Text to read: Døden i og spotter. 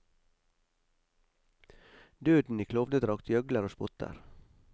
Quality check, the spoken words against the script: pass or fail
fail